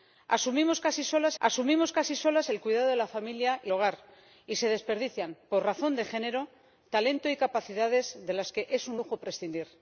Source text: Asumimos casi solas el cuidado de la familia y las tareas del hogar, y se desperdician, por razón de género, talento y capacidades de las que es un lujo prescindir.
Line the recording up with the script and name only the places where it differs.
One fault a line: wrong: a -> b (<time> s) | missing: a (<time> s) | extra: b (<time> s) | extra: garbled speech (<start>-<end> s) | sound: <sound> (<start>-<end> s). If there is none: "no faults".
extra: asumimos casi solas (1.4 s)
missing: las tareas del (3.7 s)